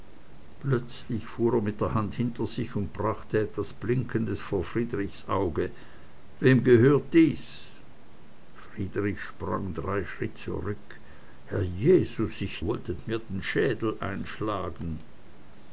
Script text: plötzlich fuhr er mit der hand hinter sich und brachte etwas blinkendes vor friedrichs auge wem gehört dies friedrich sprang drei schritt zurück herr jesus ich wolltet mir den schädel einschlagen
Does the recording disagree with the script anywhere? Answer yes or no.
no